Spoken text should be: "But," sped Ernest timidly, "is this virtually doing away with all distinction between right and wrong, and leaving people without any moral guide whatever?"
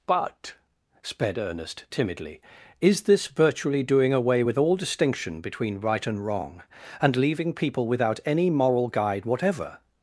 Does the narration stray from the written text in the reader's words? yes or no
no